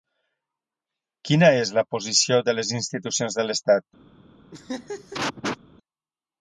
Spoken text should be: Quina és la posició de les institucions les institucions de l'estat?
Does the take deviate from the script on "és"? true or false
false